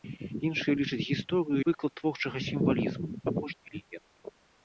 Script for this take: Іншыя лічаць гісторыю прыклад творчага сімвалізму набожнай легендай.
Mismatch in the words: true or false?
false